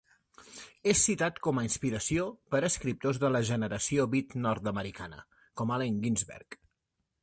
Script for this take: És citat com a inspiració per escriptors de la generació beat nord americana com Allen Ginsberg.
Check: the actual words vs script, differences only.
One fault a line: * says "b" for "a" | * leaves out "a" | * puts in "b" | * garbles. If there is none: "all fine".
all fine